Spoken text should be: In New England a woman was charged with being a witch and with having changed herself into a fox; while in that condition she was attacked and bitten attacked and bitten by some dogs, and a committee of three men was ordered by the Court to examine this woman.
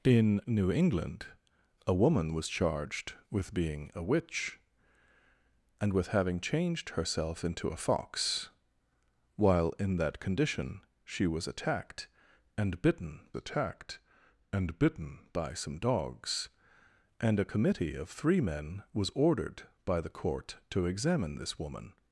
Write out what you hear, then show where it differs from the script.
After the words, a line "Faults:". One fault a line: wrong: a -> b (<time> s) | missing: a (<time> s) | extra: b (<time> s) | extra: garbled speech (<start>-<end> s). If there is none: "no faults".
In New England a woman was charged with being a witch and with having changed herself into a fox; while in that condition she was attacked and bitten attacked and bitten by some dogs, and a committee of three men was ordered by the Court to examine this woman.
Faults:
no faults